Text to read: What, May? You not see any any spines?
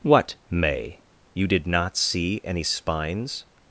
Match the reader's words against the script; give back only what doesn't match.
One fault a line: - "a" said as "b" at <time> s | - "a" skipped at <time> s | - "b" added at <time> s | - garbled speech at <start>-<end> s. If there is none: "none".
- "did" added at 1.5 s
- "any" skipped at 2.6 s